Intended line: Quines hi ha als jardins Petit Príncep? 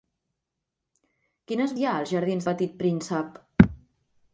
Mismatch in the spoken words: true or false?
false